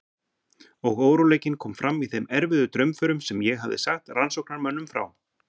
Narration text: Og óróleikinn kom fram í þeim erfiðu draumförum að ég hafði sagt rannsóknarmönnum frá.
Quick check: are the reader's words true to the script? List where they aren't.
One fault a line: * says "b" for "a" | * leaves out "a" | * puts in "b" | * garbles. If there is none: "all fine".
* says "sem" for "að"